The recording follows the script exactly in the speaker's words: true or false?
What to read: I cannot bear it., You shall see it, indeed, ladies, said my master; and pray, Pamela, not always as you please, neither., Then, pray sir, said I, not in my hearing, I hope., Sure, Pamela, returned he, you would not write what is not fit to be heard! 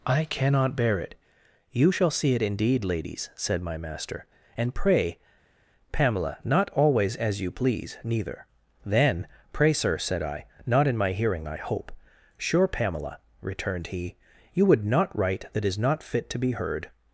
false